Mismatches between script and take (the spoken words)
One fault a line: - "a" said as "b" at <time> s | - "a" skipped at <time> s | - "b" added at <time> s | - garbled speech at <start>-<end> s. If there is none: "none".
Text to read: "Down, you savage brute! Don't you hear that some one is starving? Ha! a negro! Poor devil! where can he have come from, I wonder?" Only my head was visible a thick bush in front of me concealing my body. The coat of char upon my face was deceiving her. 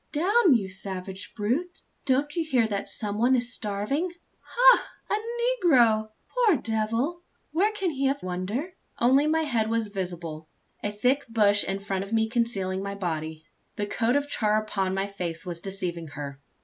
- "come from I" skipped at 8.2 s